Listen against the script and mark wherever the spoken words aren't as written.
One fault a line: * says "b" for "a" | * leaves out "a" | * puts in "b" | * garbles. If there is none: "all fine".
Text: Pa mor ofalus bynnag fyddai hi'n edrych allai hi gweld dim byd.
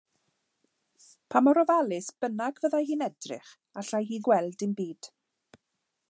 all fine